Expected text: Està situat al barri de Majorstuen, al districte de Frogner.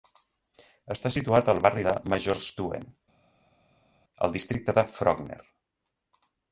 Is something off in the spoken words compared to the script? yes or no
no